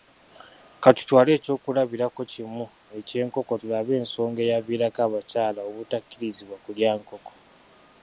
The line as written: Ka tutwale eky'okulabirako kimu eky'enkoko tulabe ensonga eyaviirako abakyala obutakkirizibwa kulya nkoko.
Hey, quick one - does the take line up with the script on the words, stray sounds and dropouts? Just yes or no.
yes